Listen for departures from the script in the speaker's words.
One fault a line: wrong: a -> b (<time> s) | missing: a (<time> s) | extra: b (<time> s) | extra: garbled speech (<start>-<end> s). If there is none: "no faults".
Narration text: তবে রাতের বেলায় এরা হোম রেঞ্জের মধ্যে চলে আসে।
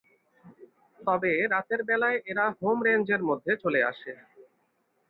no faults